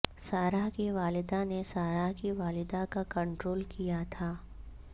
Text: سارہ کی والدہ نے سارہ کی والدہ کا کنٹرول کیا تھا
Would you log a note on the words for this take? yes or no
no